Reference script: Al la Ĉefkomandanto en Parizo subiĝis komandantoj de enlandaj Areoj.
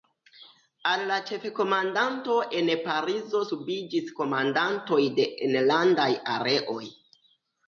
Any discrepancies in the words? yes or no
no